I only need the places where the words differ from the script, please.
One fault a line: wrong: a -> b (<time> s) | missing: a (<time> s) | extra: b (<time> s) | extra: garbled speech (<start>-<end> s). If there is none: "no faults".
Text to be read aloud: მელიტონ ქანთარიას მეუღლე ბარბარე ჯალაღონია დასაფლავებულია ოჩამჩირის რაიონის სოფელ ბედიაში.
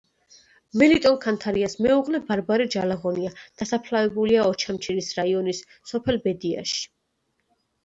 no faults